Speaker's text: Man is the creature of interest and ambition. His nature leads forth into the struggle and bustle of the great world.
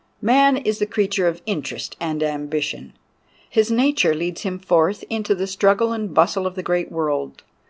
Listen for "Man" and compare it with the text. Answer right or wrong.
right